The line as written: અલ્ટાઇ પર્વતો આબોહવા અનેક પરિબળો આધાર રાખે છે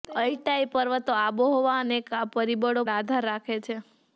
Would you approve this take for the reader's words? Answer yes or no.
yes